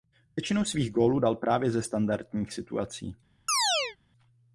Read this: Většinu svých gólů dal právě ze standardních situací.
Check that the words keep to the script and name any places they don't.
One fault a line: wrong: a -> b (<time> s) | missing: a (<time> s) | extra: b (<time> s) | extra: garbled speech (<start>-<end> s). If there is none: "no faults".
no faults